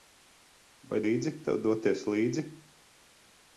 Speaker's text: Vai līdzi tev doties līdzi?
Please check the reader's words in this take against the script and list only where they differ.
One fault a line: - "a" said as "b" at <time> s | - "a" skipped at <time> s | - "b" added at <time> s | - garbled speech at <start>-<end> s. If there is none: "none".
none